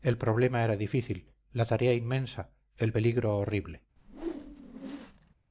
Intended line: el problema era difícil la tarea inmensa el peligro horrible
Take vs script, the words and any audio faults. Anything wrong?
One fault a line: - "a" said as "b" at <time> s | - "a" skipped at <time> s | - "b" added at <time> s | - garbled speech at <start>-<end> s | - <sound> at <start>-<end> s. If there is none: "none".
- whoosh at 4.0-5.3 s